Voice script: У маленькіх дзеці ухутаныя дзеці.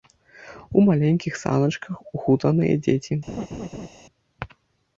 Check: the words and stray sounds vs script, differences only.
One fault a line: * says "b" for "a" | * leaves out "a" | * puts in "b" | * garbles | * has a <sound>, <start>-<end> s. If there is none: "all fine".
* says "саначках" for "дзеці"
* has a laugh, 3.3-3.9 s